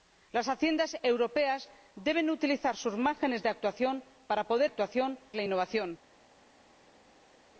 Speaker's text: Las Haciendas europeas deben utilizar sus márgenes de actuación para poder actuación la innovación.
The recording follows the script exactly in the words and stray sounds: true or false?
true